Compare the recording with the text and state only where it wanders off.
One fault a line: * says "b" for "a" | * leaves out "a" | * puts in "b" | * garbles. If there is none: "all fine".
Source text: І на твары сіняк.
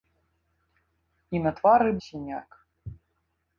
all fine